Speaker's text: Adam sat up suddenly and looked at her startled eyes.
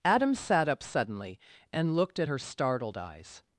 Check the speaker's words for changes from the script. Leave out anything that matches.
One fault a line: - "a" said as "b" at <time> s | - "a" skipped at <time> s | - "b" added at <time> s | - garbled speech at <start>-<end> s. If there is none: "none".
none